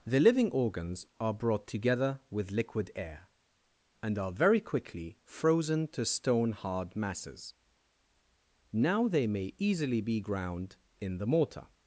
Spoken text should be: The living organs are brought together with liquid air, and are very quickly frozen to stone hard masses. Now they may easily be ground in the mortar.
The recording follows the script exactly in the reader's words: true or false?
true